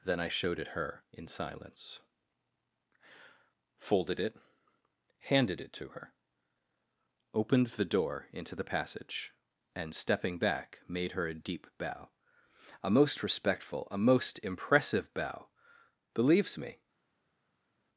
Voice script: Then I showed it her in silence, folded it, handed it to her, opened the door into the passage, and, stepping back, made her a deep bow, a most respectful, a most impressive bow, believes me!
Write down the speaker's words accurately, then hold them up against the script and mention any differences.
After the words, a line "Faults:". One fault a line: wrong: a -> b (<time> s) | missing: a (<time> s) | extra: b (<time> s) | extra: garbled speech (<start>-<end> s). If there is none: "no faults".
Then I showed it her in silence, folded it, handed it to her, opened the door into the passage, and, stepping back, made her a deep bow, a most respectful, a most impressive bow, believes me!
Faults:
no faults